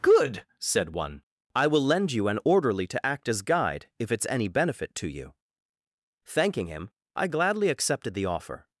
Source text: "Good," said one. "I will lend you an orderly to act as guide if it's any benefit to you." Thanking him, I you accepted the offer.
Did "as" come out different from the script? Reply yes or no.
no